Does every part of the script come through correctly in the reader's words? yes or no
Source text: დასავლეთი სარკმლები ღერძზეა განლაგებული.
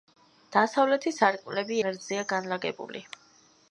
yes